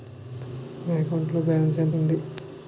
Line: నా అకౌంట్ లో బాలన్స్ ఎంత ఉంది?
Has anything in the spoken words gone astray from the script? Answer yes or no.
no